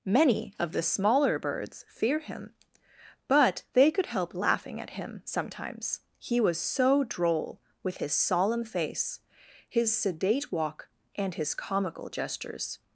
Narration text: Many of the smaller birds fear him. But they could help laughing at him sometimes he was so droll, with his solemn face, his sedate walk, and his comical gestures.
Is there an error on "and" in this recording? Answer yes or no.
no